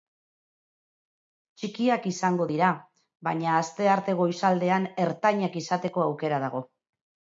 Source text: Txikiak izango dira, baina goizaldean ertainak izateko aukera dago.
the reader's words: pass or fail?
fail